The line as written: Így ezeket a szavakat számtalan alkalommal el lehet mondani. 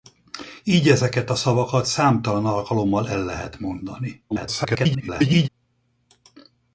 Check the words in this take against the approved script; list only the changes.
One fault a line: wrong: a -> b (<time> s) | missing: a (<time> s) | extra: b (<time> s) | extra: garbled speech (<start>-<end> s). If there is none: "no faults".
extra: garbled speech (4.3-5.5 s)